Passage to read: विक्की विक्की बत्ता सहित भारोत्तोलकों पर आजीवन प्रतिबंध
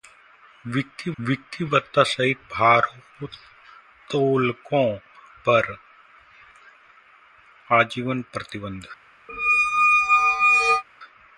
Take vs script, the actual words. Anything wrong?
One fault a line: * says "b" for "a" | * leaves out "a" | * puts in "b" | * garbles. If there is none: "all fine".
all fine